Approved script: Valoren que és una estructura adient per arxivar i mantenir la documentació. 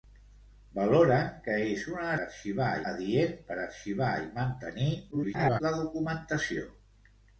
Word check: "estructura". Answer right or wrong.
wrong